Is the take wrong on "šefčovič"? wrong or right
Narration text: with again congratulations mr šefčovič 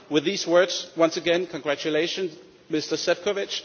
right